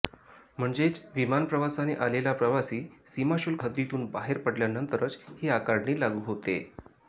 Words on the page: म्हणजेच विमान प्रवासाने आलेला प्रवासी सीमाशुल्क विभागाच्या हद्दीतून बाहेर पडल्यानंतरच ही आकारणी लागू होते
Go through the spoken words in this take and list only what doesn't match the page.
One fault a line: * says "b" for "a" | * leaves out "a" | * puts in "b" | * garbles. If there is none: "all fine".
* leaves out "विभागाच्या"